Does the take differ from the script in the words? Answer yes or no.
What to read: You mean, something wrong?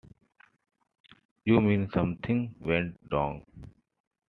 yes